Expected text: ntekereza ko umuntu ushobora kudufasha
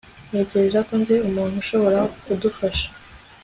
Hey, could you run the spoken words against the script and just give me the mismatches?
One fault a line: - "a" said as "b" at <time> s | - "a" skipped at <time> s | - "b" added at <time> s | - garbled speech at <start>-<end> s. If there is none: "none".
- "nzi" added at 1.0 s